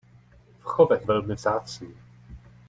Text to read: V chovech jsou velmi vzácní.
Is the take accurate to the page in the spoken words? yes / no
no